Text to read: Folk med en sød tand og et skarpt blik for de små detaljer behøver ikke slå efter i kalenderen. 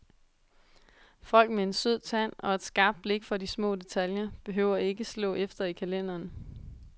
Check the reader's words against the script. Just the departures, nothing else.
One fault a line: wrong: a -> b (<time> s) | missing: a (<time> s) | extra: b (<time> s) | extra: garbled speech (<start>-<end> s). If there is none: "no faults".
no faults